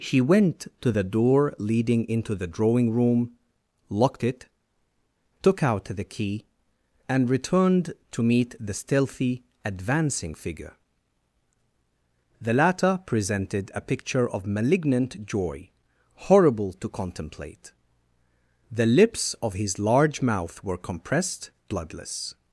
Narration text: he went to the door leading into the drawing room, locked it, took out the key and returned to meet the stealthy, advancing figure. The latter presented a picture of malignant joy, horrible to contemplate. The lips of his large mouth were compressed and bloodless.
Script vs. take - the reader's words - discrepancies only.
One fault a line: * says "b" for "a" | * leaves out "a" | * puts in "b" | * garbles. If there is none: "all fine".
* leaves out "and"